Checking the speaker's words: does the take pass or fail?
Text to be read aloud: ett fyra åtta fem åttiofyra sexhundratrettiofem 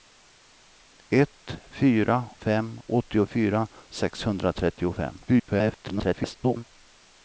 fail